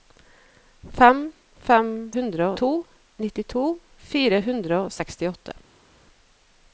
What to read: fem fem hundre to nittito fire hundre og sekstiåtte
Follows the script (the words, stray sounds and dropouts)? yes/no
yes